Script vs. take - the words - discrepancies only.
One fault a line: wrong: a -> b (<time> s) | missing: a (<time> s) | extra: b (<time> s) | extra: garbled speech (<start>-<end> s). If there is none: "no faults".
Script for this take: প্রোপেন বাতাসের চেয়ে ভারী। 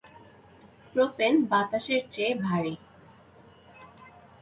no faults